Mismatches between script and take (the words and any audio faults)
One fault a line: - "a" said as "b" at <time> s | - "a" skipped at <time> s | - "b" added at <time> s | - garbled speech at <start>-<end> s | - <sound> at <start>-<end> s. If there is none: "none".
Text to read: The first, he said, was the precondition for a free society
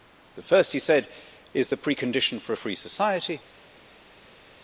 - "was" said as "is" at 1.5 s